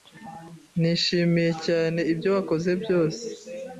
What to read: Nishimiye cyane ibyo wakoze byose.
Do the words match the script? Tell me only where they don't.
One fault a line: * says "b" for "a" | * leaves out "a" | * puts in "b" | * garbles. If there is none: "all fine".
all fine